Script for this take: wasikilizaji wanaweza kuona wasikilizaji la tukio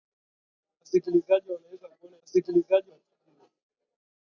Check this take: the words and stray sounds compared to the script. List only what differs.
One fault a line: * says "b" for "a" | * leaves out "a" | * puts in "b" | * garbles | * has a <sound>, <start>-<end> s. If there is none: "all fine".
all fine